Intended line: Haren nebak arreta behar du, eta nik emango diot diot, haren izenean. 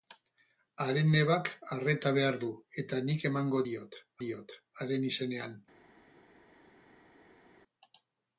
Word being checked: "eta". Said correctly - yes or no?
yes